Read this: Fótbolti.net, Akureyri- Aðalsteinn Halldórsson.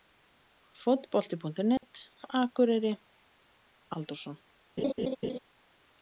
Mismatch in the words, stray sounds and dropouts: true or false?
true